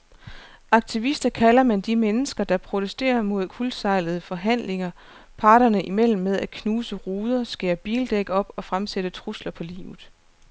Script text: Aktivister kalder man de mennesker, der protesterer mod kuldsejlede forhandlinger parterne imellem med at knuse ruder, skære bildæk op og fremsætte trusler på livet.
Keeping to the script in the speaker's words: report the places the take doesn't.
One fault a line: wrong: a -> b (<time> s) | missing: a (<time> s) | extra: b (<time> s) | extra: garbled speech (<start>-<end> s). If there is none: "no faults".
no faults